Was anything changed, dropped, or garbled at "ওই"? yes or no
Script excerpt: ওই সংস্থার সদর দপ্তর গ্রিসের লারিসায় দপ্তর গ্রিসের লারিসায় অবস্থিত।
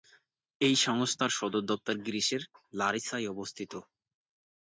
yes